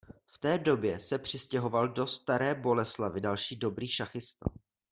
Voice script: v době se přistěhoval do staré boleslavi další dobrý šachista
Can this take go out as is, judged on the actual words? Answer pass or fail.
fail